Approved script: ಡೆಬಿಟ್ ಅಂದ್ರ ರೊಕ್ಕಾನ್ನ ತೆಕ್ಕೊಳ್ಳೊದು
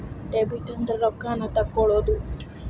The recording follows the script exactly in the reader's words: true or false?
true